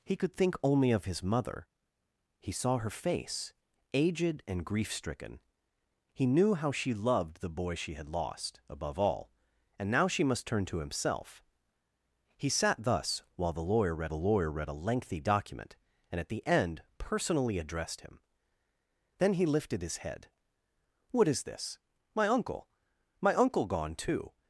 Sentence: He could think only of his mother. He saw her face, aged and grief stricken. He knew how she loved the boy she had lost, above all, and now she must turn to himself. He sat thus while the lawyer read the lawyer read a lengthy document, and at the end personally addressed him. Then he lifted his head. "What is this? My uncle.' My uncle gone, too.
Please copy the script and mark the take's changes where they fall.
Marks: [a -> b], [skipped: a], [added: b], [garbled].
He could think only of his mother. He saw her face, aged and grief stricken. He knew how she loved the boy she had lost, above all, and now she must turn to himself. He sat thus while the lawyer read the lawyer read a lengthy document, and at the end personally addressed him. Then he lifted his head. "What is this? My uncle.' My uncle gone, too.